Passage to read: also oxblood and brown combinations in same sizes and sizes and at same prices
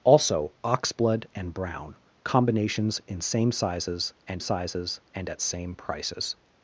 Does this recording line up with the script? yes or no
yes